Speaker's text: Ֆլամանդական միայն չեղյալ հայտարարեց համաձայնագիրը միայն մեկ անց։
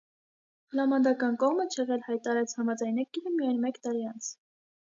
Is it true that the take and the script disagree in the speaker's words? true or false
true